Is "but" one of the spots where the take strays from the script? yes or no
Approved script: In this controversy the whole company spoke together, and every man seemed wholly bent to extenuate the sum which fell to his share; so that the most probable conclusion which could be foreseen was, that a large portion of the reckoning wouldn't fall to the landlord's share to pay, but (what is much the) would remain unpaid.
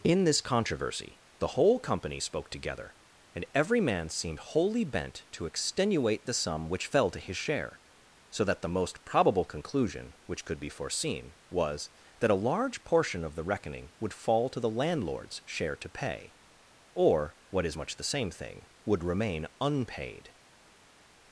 yes